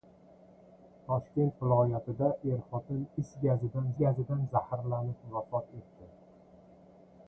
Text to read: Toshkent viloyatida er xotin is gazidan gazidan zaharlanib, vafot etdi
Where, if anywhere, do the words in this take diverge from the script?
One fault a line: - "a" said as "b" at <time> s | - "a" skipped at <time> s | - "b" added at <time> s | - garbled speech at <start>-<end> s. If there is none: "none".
none